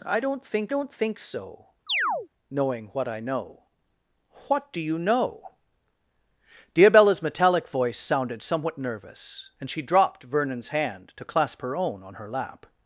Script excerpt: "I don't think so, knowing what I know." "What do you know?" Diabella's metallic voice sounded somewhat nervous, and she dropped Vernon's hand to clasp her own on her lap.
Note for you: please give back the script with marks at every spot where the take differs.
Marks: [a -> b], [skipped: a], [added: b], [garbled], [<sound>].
"I don't think [added: don't think] so, [chirp] knowing what I know." "What do you know?" Diabella's metallic voice sounded somewhat nervous, and she dropped Vernon's hand to clasp her own on her lap.